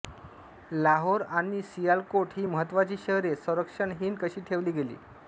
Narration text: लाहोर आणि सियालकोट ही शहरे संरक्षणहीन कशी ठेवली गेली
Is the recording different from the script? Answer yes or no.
yes